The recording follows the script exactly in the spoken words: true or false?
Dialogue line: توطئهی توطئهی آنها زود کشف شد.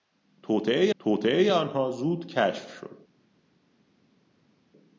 true